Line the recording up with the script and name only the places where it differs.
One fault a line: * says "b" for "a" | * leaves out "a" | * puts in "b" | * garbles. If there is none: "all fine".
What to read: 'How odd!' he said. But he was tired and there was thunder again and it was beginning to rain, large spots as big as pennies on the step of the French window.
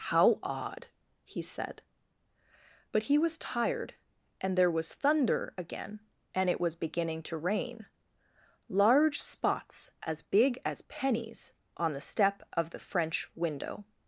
all fine